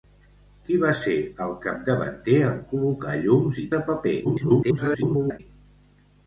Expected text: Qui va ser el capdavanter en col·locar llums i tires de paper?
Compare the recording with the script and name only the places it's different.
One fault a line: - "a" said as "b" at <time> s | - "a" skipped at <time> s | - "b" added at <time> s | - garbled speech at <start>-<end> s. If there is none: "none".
- "tires" skipped at 3.7 s
- garbled speech at 4.2-5.4 s